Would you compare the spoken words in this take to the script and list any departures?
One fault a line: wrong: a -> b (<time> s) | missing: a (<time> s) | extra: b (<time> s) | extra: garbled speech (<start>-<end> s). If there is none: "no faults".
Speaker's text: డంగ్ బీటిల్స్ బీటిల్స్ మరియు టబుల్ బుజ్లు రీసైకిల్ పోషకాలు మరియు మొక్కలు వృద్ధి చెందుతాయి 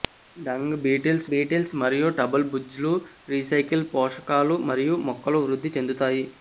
no faults